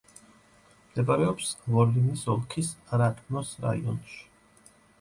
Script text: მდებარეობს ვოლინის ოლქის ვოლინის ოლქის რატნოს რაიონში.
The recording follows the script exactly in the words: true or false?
false